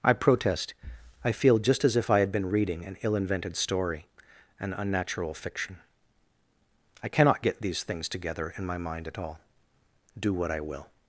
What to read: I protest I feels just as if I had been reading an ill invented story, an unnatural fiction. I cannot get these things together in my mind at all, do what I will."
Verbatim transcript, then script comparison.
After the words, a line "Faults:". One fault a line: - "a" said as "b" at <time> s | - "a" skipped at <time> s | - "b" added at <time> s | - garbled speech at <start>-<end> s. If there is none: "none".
I protest I feel just as if I had been reading an ill invented story, an unnatural fiction. I cannot get these things together in my mind at all, do what I will."
Faults:
- "feels" said as "feel" at 1.3 s